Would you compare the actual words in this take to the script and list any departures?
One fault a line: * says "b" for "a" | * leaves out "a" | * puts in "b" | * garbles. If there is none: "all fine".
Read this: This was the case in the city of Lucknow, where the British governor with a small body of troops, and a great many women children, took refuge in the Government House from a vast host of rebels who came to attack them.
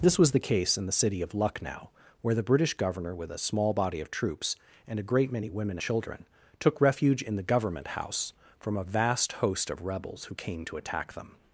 all fine